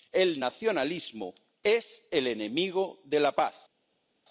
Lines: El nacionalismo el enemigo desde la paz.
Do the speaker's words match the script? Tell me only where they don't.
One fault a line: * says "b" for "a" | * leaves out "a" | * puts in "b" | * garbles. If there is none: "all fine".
* puts in "es"
* says "de" for "desde"